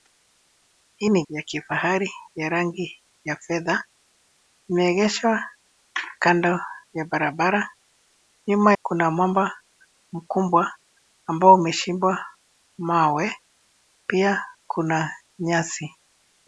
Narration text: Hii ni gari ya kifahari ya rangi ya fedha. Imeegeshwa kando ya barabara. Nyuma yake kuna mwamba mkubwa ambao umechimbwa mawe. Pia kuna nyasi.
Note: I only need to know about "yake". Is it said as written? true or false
false